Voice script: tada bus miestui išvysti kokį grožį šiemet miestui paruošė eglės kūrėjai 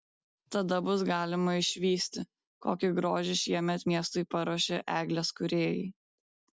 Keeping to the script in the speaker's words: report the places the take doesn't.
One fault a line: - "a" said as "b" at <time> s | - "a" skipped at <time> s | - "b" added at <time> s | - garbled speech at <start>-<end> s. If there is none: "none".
- "miestui" said as "galima" at 1.1 s